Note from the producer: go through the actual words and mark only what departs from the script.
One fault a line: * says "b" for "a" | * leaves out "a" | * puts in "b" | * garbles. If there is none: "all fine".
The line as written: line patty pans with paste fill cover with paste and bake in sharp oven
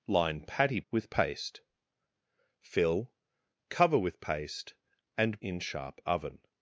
* leaves out "pans"
* leaves out "bake"